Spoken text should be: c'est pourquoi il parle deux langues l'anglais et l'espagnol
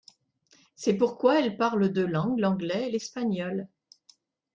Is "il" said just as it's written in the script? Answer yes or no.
no